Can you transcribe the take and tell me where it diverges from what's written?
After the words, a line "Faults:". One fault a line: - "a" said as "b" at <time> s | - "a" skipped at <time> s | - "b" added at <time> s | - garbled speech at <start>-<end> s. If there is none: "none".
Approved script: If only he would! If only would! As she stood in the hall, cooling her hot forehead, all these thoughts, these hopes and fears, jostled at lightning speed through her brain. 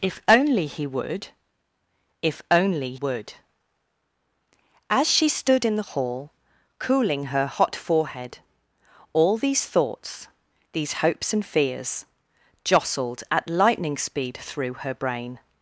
If only he would! If only would! As she stood in the hall, cooling her hot forehead, all these thoughts, these hopes and fears, jostled at lightning speed through her brain.
Faults:
none